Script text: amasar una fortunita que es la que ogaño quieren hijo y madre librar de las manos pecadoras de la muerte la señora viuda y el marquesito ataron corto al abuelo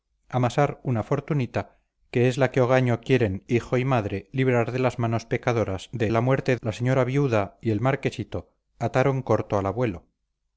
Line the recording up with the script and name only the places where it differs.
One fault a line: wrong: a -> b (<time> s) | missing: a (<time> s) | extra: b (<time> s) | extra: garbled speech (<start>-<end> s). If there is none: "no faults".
no faults